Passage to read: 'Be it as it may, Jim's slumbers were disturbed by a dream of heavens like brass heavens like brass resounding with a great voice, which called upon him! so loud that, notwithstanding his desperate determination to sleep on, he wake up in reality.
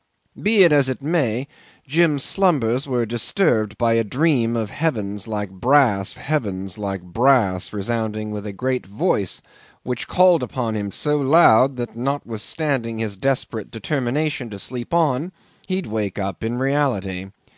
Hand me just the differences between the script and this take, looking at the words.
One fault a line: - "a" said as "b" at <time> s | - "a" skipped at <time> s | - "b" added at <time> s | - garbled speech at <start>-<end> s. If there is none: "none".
none